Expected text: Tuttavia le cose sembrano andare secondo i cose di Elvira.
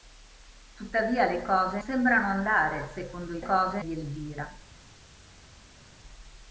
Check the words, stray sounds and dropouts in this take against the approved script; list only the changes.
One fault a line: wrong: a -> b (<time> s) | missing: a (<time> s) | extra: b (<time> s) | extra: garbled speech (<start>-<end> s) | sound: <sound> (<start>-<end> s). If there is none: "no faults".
no faults